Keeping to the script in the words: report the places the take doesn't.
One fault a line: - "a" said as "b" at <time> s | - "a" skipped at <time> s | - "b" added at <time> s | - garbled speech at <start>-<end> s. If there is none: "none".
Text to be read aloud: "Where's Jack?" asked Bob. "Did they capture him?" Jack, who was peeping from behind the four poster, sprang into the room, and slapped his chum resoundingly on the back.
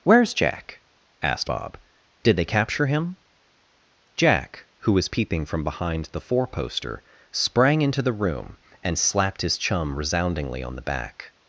none